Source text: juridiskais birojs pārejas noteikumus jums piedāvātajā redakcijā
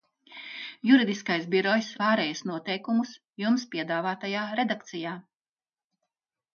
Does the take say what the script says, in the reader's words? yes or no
yes